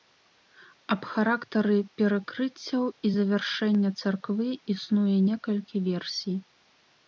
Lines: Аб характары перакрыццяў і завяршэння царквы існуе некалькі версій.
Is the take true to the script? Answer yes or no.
yes